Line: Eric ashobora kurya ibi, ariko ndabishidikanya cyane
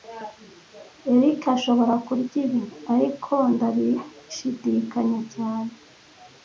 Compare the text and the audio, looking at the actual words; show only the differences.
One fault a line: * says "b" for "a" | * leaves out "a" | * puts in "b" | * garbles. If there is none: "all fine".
all fine